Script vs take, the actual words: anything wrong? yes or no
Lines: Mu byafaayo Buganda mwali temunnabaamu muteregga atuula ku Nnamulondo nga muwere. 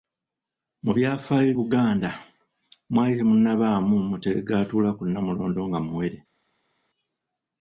no